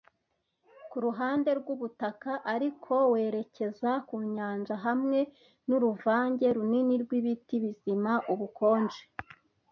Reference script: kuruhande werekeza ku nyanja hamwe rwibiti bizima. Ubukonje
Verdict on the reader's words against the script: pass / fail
fail